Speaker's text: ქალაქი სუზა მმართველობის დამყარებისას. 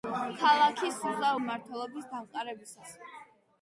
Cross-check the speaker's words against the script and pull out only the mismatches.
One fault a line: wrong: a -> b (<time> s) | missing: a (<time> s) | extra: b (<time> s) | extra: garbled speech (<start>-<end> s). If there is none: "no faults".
no faults